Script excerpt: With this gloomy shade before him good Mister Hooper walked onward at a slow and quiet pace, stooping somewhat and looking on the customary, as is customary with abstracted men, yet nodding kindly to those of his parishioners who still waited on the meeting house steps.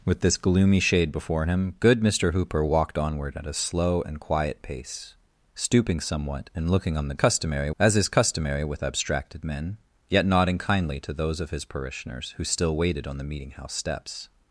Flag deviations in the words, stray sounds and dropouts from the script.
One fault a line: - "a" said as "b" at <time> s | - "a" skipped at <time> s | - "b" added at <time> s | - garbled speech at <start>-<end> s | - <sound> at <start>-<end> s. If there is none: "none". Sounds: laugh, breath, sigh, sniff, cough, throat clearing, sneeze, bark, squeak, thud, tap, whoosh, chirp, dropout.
none